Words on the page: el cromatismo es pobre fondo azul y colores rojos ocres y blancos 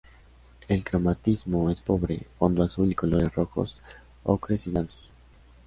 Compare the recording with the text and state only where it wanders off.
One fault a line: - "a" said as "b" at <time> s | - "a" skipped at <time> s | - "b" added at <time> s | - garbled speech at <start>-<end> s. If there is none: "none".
none